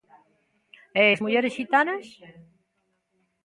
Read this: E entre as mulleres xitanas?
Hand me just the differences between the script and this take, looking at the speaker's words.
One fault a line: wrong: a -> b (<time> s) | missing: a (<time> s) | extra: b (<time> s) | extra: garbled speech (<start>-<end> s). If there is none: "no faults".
missing: entre (1.0 s)